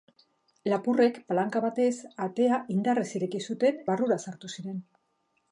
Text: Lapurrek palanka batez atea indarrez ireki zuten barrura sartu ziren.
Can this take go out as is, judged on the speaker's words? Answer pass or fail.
pass